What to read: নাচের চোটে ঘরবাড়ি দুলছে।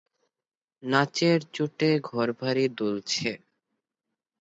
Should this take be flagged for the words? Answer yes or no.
no